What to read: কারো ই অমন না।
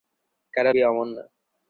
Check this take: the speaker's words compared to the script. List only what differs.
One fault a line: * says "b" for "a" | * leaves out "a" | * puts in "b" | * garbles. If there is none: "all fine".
all fine